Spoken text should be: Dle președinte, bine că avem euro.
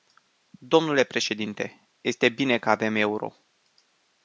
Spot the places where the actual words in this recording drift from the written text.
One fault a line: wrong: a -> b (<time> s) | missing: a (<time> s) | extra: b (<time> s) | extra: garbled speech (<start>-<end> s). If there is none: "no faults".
extra: este (2.0 s)